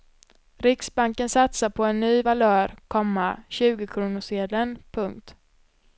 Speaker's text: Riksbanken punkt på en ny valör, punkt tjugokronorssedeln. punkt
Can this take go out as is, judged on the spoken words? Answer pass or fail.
fail